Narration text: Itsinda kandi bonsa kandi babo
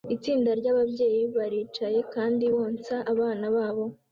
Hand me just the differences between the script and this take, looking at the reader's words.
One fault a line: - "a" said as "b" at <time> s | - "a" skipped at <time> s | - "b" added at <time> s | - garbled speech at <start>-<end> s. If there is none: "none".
- "ry'ababyeyi baricaye" added at 0.6 s
- "kandi" said as "abana" at 3.1 s